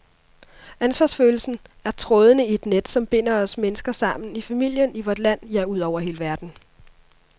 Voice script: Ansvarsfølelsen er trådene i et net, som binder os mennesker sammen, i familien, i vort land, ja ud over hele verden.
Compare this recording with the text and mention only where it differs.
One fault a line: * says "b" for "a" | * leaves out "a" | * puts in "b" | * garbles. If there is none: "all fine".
all fine